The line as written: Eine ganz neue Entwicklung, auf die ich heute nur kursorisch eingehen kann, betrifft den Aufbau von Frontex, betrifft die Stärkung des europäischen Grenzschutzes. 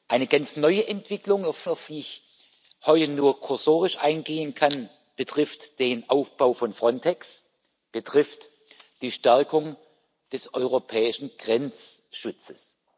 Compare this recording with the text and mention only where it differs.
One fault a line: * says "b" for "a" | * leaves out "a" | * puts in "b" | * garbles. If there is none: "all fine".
* puts in "auf"